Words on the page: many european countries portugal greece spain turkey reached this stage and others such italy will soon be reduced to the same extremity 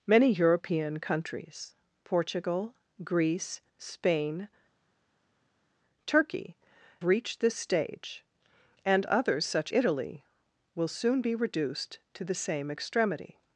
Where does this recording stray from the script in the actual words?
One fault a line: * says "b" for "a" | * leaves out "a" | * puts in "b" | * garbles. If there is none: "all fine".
all fine